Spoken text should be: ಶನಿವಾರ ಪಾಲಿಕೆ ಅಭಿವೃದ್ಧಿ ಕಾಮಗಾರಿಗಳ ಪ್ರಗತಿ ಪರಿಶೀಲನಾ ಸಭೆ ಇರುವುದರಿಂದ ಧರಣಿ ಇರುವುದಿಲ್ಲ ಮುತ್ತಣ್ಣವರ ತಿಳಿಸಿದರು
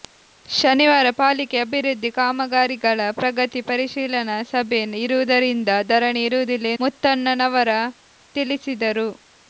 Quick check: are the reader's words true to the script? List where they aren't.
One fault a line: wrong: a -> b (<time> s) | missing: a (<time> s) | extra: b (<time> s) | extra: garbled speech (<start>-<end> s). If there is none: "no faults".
no faults